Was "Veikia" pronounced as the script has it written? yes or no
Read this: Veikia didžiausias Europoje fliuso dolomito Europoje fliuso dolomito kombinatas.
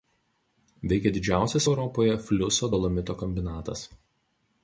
yes